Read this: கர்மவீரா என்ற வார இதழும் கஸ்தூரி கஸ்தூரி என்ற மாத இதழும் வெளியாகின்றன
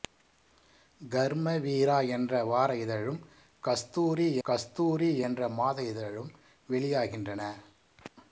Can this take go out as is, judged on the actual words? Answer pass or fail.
pass